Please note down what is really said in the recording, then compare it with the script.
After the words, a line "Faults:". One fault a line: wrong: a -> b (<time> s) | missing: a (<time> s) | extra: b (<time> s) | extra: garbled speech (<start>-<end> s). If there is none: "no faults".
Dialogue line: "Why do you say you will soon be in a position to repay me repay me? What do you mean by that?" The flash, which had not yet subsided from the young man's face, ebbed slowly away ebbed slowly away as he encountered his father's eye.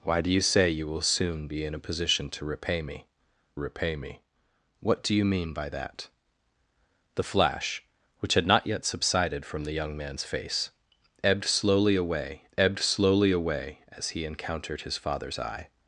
"Why do you say you will soon be in a position to repay me repay me? What do you mean by that?" The flash, which had not yet subsided from the young man's face, ebbed slowly away ebbed slowly away as he encountered his father's eye.
Faults:
no faults